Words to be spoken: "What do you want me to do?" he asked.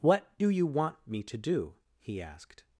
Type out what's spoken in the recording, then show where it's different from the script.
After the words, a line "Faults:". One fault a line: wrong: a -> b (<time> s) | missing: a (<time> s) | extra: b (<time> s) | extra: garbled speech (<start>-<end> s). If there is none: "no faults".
"What do you want me to do?" he asked.
Faults:
no faults